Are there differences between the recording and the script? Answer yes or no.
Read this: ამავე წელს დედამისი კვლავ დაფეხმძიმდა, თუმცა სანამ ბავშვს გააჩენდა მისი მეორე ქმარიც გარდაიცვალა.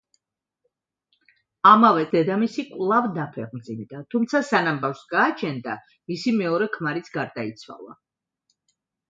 yes